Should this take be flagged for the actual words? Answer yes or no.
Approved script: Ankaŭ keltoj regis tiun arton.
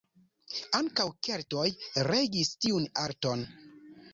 no